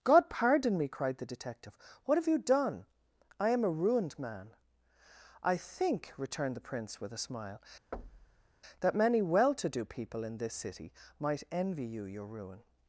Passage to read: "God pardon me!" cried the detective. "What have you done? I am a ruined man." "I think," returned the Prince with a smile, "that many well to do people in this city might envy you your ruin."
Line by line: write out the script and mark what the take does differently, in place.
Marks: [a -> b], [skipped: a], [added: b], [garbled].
"God pardon me!" cried the detective. "What have you done? I am a ruined man." "I think," returned the Prince with a smile, "that many well to do people in this city might envy you your ruin."